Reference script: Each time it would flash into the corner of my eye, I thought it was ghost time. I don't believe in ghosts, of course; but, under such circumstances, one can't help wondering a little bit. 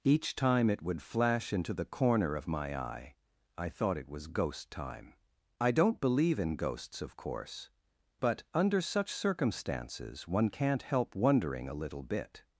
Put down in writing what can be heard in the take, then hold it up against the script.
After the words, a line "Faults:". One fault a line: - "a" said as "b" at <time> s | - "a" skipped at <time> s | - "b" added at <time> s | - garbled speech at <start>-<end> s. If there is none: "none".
Each time it would flash into the corner of my eye, I thought it was ghost time. I don't believe in ghosts, of course; but, under such circumstances, one can't help wondering a little bit.
Faults:
none